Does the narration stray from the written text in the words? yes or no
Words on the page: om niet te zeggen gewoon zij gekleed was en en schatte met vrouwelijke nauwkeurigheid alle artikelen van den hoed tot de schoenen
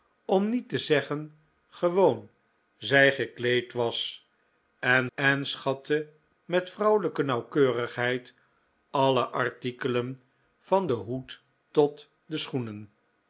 no